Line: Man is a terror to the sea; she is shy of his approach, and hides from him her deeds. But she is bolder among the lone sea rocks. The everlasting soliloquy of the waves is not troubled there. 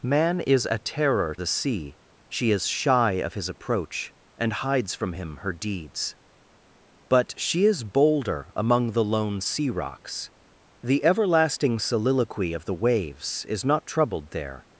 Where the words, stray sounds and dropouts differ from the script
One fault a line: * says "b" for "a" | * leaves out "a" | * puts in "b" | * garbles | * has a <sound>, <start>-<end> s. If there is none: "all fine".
* leaves out "to"